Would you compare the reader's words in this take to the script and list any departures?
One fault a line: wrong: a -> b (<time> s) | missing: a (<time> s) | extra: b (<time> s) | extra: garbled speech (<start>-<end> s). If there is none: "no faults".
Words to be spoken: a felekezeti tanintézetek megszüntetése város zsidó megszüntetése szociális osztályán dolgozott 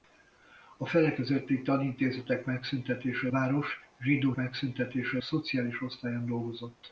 no faults